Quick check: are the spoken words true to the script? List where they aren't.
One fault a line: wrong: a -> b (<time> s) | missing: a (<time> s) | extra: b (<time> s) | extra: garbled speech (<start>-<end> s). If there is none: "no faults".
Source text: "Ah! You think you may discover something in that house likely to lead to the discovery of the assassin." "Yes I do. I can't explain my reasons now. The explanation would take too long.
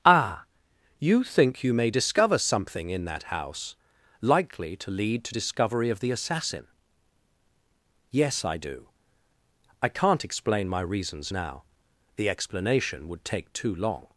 missing: the (5.3 s)